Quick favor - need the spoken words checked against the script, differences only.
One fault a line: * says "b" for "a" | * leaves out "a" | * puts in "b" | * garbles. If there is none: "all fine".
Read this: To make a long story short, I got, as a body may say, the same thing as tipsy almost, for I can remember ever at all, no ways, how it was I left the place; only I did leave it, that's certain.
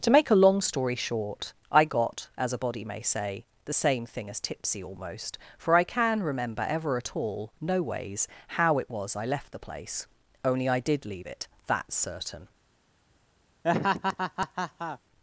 all fine